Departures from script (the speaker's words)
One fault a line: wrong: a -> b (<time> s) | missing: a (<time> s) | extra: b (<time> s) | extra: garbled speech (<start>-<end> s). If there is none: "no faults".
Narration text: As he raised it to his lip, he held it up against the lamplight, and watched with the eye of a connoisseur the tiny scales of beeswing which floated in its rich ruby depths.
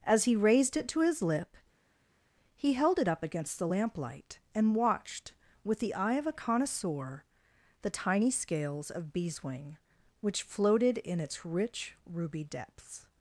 no faults